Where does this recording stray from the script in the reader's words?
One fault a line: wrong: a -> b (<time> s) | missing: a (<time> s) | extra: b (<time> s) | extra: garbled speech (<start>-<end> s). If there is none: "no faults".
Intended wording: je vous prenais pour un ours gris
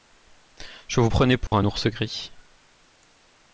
no faults